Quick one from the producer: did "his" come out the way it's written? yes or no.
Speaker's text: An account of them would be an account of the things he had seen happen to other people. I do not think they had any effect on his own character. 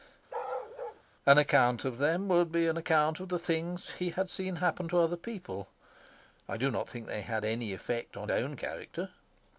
no